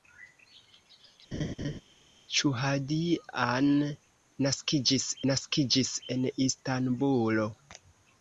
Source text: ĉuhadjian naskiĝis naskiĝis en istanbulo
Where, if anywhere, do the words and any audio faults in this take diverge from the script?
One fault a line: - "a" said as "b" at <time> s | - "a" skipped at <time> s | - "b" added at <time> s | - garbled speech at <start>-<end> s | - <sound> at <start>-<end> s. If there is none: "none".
- laugh at 1.3-1.8 s